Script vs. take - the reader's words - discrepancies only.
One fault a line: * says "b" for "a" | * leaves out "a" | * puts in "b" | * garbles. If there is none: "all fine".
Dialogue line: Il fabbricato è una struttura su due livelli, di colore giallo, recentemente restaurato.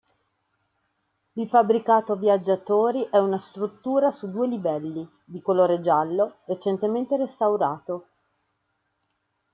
* puts in "viaggiatori"